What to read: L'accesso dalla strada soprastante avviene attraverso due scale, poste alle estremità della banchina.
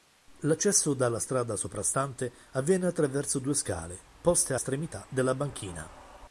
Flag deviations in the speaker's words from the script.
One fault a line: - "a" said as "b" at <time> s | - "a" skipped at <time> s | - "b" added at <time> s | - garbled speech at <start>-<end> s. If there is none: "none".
- "alle" skipped at 4.5 s